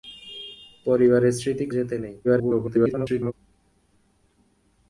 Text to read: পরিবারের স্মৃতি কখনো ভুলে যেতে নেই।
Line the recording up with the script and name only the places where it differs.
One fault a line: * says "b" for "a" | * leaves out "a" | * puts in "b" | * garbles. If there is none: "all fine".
* leaves out "কখনো ভুলে"
* garbles